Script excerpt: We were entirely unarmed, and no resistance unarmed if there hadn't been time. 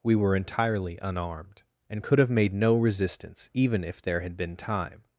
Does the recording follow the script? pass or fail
fail